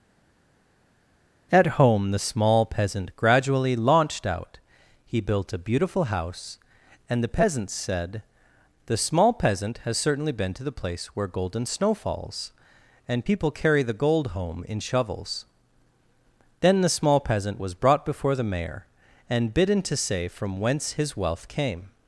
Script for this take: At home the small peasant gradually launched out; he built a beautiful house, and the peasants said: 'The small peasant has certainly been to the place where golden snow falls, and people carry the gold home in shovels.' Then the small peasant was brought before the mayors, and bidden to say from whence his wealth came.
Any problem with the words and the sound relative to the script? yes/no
yes